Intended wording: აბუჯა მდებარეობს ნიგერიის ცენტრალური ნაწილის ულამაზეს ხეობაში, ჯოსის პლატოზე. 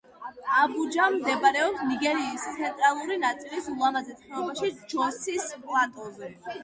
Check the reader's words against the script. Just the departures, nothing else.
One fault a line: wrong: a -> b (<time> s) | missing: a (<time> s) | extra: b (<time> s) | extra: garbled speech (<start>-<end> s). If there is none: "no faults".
no faults